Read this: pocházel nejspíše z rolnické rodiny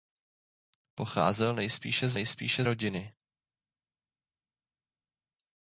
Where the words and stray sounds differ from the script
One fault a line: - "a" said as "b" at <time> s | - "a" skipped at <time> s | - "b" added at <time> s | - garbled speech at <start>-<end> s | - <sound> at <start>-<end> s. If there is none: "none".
- "rolnické" said as "nejspíše" at 2.1 s